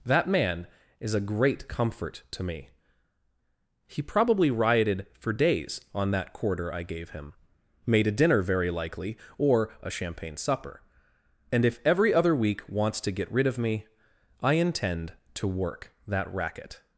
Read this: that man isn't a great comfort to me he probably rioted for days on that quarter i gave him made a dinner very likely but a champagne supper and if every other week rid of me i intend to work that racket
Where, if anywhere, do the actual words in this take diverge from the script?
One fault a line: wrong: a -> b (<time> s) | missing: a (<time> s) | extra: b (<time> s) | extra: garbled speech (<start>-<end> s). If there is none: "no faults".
wrong: isn't -> is (1.0 s)
wrong: but -> or (9.4 s)
extra: wants to get (12.7 s)